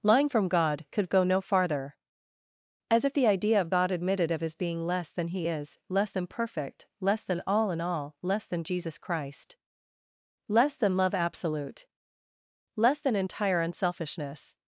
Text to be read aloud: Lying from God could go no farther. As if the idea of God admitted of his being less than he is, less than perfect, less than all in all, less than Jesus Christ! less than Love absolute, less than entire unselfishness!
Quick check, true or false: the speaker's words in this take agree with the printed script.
true